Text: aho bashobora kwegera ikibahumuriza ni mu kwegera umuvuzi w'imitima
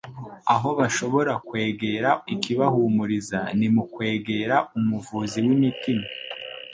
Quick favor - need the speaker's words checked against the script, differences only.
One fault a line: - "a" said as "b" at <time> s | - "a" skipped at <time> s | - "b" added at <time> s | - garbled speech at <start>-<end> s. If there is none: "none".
none